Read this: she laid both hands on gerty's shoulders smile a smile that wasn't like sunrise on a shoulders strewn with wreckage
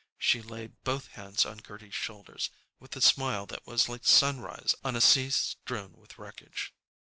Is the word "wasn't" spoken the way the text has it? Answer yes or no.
no